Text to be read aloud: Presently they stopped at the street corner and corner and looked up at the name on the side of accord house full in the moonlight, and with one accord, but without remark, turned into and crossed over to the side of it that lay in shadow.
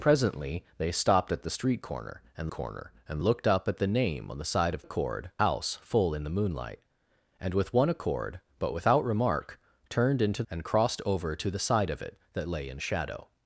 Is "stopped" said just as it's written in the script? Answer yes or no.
yes